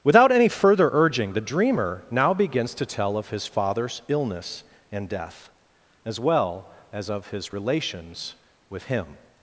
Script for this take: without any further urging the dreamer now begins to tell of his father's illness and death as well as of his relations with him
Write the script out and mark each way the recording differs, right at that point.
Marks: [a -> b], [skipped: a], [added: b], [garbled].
without any further urging the dreamer now begins to tell of his father's illness and death as well as of his relations with him